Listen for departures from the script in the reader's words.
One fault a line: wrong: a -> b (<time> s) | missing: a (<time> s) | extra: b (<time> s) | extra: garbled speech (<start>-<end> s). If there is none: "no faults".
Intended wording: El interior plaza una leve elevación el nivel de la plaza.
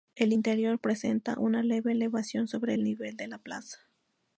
wrong: plaza -> presenta (0.8 s)
extra: sobre (2.5 s)